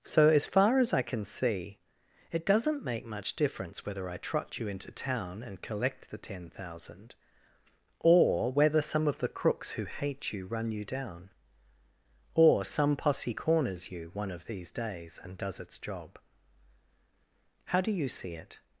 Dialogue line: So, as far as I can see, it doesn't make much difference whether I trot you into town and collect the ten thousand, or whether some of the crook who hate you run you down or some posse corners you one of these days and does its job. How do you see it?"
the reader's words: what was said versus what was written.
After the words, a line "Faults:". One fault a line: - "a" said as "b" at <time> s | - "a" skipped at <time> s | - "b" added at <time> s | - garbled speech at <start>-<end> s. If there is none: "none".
So, as far as I can see, it doesn't make much difference whether I trot you into town and collect the ten thousand, or whether some of the crooks who hate you run you down or some posse corners you one of these days and does its job. How do you see it?"
Faults:
- "crook" said as "crooks" at 9.3 s